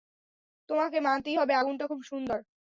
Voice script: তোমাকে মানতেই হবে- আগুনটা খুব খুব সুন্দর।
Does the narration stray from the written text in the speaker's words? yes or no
yes